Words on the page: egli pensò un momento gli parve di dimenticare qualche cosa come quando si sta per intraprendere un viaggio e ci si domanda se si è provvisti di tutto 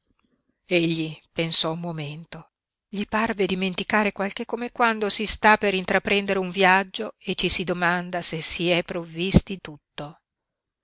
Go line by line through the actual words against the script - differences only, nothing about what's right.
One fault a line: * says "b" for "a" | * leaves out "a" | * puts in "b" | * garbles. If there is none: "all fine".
* leaves out "di"
* leaves out "cosa"
* leaves out "di"